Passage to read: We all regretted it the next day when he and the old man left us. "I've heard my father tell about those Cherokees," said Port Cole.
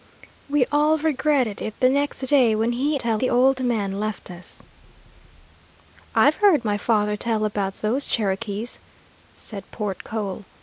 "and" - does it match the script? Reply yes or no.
no